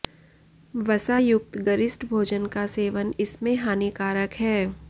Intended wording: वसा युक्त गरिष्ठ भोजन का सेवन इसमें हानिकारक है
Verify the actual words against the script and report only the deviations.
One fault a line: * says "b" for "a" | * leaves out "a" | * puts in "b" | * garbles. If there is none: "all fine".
all fine